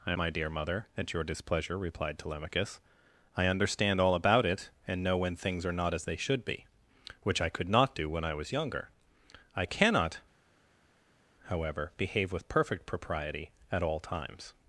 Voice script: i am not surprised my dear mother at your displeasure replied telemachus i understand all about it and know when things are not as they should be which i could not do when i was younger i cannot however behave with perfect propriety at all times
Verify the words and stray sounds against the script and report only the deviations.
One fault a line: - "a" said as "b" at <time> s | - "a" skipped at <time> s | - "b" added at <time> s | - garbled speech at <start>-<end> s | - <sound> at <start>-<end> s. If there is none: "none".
- "am not surprised" skipped at 0.1 s